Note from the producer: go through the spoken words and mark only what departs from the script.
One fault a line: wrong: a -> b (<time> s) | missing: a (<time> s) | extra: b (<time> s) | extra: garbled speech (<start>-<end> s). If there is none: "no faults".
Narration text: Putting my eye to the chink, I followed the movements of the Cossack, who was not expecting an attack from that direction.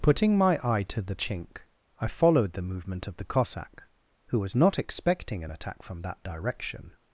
wrong: movements -> movement (2.6 s)